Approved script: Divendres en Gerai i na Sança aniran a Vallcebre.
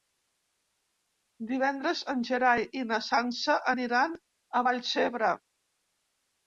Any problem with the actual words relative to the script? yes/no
no